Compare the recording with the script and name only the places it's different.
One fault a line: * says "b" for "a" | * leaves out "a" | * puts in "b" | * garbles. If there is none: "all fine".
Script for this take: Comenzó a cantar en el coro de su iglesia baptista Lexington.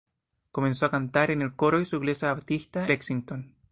all fine